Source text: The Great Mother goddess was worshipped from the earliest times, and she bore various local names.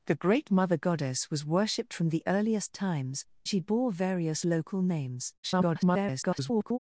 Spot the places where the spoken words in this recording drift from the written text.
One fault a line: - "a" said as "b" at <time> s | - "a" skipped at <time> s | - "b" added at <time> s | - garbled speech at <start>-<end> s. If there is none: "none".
- "and" skipped at 3.2 s
- garbled speech at 5.4-6.8 s